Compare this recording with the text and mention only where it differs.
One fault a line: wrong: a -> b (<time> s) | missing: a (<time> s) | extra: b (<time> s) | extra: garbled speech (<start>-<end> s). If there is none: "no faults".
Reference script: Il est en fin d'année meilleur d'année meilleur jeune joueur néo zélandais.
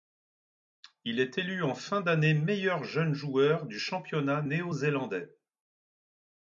extra: élu (1.4 s)
wrong: d'année meilleur jeune joueur -> jeune joueur du championnat (2.8 s)